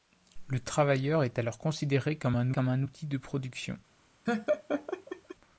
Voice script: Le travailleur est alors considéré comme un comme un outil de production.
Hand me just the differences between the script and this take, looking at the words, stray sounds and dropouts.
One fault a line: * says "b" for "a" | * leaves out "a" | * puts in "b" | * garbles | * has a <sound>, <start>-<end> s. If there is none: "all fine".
* has a laugh, 4.3-5.4 s